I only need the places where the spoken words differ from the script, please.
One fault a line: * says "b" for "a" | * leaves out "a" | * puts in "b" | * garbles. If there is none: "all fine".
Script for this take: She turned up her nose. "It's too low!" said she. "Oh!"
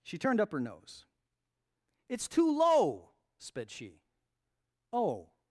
* says "sped" for "said"